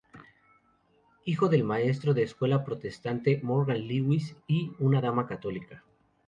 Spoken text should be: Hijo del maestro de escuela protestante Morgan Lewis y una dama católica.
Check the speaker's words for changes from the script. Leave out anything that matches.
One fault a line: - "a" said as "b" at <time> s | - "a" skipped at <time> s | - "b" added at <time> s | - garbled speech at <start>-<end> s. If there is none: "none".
none